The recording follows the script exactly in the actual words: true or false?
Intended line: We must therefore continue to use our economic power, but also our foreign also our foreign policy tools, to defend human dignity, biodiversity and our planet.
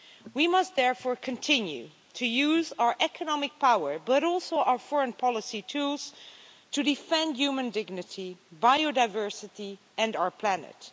false